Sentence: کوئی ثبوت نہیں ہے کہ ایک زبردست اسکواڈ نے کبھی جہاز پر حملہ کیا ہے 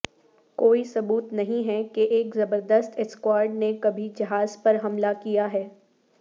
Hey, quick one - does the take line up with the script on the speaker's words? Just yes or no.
yes